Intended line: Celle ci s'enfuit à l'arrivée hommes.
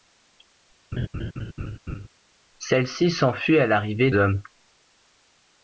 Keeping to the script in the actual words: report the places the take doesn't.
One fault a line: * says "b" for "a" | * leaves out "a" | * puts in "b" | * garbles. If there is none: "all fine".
all fine